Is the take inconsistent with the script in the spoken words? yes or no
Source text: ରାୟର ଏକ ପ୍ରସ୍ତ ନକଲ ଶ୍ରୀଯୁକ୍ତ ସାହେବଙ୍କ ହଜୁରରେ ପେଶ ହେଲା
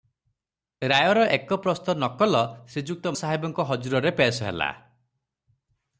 no